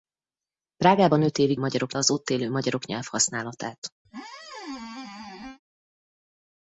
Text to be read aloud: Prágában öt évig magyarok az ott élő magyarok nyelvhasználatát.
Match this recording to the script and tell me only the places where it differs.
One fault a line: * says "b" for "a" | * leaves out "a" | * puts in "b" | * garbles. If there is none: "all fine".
all fine